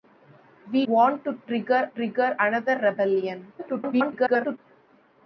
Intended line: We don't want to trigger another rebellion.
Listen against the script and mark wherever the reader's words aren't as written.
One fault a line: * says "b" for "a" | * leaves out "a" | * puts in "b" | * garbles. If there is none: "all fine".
* leaves out "don't"
* puts in "trigger"
* garbles